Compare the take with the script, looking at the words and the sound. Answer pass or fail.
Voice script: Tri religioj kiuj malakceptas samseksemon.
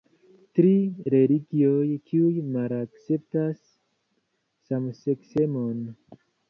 pass